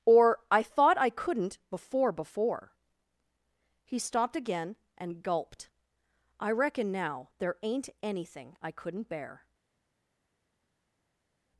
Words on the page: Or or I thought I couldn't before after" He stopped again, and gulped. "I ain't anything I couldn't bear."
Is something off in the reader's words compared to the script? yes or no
yes